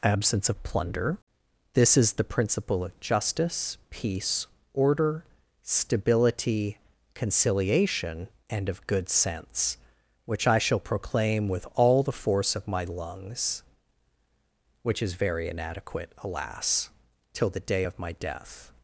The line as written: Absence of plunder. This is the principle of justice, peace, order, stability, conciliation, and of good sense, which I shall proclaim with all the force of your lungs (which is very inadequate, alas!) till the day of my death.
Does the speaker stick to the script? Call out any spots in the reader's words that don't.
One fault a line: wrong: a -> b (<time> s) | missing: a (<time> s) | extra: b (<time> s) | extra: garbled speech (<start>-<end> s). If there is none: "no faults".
wrong: your -> my (12.7 s)